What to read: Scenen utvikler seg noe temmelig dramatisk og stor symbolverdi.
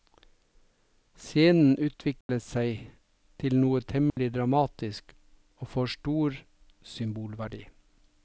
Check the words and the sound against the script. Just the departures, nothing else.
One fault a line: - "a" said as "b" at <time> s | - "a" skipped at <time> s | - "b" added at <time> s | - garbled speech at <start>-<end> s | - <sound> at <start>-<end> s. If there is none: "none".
- dropout at 2.2-2.3 s
- "til" added at 3.4 s
- dropout at 4.1-4.2 s
- "får" added at 5.8 s